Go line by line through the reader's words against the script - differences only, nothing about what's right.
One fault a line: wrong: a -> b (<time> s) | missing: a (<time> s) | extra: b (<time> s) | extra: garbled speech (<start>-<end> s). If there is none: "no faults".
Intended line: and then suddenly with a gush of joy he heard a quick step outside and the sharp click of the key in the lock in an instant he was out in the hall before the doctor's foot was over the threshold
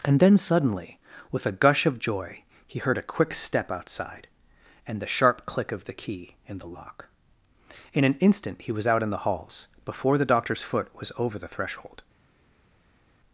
wrong: hall -> halls (9.2 s)